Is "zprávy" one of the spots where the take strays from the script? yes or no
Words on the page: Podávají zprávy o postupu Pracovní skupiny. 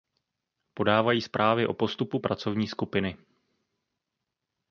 no